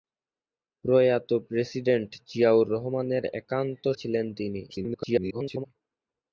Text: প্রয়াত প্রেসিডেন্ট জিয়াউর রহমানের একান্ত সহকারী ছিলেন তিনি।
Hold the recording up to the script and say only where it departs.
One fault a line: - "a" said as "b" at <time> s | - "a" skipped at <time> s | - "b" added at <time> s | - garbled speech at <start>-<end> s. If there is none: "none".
- "সহকারী" skipped at 3.8 s
- garbled speech at 4.7-5.7 s